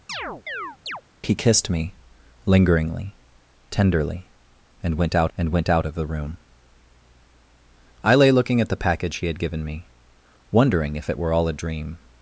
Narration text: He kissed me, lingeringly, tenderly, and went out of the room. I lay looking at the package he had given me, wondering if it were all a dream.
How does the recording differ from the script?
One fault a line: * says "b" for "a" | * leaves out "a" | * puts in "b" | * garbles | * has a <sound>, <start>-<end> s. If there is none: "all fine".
* has a chirp, 0.1-1.0 s
* puts in "and went out"